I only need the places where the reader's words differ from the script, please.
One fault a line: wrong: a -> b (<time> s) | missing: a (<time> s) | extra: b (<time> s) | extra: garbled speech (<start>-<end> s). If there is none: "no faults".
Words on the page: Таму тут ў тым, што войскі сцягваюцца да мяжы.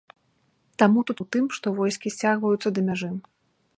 no faults